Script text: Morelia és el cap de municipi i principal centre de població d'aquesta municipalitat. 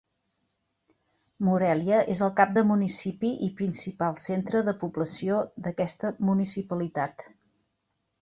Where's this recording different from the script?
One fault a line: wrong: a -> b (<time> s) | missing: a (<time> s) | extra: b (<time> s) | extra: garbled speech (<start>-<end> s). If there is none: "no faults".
no faults